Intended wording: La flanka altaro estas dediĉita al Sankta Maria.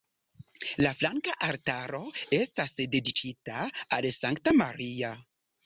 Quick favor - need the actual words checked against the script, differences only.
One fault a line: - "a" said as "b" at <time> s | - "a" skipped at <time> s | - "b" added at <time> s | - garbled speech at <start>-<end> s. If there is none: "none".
none